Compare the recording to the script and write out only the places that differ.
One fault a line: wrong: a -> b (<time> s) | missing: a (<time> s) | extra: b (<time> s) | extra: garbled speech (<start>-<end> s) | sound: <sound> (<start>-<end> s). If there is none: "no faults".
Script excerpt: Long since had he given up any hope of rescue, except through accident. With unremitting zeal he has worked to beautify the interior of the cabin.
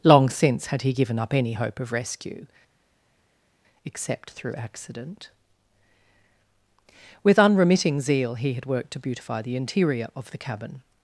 wrong: has -> had (8.5 s)